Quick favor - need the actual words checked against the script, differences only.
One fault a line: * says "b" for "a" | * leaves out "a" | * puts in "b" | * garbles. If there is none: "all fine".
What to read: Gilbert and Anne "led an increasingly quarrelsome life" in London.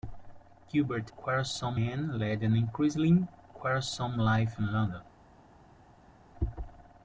* says "quarrelsome" for "and"